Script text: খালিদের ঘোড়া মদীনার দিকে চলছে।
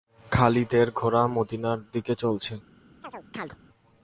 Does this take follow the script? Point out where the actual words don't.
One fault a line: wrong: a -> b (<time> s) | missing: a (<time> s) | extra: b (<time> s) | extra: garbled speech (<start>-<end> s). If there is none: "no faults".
no faults